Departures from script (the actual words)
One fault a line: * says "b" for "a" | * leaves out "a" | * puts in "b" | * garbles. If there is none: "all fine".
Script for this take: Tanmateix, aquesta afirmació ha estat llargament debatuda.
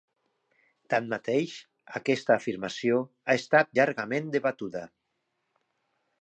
all fine